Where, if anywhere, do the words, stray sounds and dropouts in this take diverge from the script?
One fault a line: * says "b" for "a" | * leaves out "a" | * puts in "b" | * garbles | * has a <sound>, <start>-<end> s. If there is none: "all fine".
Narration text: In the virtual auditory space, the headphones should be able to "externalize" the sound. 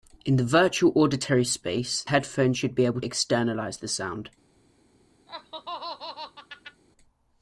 * leaves out "the"
* leaves out "to"
* has a laugh, 5.3-6.8 s